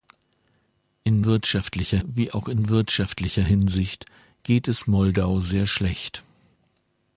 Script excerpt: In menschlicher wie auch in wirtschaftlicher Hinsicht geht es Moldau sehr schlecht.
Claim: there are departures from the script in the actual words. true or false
true